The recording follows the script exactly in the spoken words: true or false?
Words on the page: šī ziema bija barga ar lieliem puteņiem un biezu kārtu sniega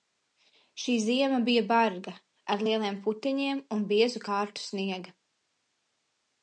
true